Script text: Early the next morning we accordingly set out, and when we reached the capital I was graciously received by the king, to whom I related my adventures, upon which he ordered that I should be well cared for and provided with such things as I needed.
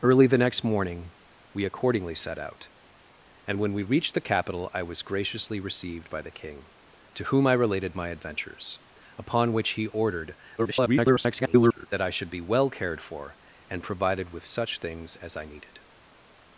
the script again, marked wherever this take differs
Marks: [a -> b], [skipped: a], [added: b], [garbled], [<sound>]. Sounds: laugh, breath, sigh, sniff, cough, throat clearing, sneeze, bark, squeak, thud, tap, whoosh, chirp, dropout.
Early the next morning we accordingly set out, and when we reached the capital I was graciously received by the king, to whom I related my adventures, upon which he ordered [garbled] that I should be well cared for and provided with such things as I needed.